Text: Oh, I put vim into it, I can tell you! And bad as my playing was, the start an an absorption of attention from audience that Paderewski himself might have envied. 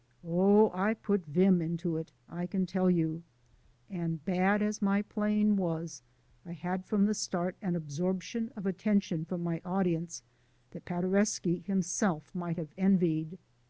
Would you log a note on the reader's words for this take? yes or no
yes